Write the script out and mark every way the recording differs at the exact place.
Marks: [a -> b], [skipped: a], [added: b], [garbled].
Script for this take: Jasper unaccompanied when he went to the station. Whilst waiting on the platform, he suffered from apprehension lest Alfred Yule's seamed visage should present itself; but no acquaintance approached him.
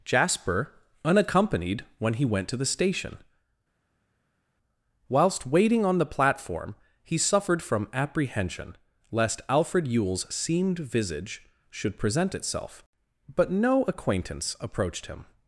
Jasper unaccompanied when he went to the station. Whilst waiting on the platform, he suffered from apprehension lest Alfred Yule's seamed visage should present itself; but no acquaintance approached him.